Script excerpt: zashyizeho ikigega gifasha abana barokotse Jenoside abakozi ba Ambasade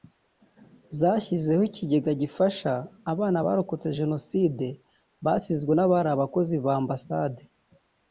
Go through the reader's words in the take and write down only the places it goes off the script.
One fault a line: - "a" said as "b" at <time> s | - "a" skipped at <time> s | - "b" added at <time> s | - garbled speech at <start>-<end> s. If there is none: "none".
- "basizwe n'abari" added at 5.2 s